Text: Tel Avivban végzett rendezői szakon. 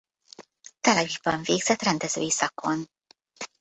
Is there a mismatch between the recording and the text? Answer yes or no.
no